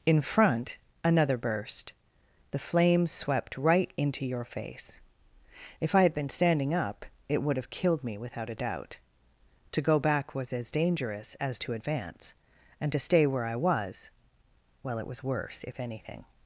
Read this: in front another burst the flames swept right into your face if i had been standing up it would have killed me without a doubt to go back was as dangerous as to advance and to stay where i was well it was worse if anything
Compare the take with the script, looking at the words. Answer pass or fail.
pass